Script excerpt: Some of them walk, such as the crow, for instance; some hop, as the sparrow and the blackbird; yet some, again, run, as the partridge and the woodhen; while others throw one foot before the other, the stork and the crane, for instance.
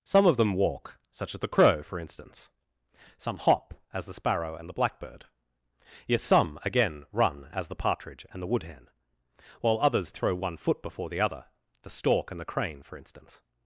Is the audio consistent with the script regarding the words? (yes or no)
yes